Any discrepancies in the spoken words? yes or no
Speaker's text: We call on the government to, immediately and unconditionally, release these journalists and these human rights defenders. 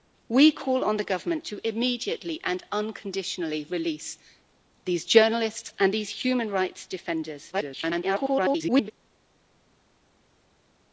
yes